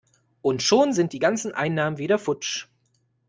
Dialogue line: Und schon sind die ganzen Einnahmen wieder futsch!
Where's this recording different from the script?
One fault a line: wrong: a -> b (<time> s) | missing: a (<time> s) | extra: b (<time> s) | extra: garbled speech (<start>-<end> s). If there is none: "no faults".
no faults